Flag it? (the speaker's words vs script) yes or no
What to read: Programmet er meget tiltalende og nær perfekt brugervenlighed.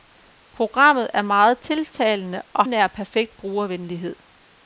no